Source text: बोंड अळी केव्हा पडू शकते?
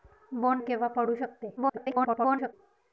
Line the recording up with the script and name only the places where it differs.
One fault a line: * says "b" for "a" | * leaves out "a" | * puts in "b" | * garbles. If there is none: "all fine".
* leaves out "अळी"
* garbles